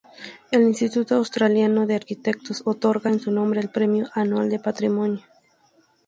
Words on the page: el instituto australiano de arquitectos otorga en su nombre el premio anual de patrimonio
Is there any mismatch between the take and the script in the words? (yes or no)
no